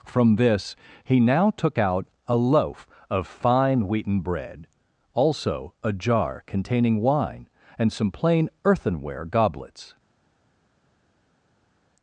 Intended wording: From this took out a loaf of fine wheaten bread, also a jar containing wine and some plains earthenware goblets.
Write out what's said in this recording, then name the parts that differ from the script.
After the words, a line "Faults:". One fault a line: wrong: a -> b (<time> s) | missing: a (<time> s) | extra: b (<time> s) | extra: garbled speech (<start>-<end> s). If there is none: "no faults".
From this he now took out a loaf of fine wheaten bread, also a jar containing wine and some plain earthenware goblets.
Faults:
extra: he now (1.0 s)
wrong: plains -> plain (8.1 s)